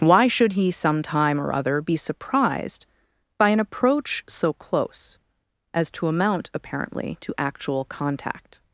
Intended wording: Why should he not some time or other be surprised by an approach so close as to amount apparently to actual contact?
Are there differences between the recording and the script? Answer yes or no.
yes